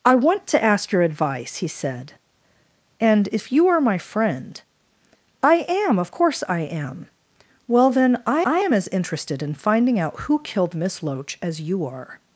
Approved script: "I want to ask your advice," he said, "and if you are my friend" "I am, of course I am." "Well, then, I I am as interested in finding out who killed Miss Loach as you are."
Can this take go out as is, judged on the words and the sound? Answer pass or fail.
pass